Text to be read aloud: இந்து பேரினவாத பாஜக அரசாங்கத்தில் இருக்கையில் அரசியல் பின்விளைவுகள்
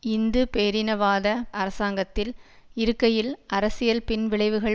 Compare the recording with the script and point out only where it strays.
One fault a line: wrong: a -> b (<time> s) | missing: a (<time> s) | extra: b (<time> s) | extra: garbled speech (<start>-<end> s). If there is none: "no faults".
missing: பாஜக (1.3 s)